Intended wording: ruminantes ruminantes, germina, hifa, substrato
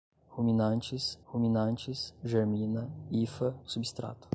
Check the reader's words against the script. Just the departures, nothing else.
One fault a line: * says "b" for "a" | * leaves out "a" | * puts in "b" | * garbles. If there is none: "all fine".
all fine